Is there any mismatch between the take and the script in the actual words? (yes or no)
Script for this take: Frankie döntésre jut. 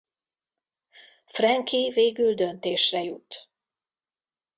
yes